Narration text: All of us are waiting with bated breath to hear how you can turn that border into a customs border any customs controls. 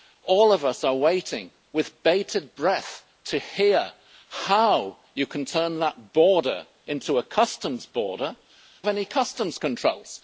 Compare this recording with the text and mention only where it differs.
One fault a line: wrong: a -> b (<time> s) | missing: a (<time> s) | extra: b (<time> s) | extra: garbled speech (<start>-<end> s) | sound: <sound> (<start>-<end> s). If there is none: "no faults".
no faults